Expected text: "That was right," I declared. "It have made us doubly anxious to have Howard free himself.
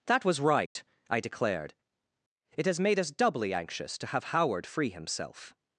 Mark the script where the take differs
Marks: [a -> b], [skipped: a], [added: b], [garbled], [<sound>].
"That was right," [dropout] I declared. "It [have -> has] made us doubly anxious to have Howard free himself.